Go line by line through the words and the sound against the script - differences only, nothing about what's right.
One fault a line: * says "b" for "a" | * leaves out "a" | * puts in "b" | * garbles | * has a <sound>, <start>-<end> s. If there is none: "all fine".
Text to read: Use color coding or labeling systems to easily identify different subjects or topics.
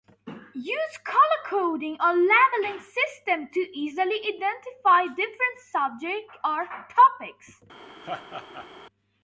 * has a laugh, 8.0-8.7 s